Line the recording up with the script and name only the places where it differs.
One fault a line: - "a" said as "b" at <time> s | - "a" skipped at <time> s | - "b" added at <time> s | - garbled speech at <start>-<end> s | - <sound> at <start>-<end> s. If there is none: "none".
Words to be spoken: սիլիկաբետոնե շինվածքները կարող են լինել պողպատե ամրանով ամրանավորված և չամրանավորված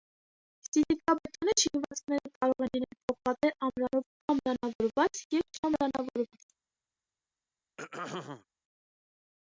- throat clearing at 7.8-8.4 s